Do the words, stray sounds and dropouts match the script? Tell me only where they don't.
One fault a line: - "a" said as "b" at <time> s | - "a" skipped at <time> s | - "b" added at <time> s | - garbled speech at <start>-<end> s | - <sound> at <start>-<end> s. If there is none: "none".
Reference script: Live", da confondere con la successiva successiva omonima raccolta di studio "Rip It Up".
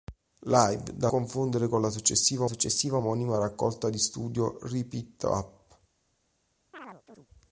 - chirp at 6.7-7.3 s